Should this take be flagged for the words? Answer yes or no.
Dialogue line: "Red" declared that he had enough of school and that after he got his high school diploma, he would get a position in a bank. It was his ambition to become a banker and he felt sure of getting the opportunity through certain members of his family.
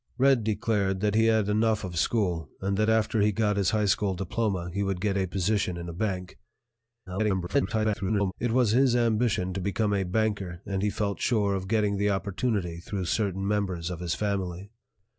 yes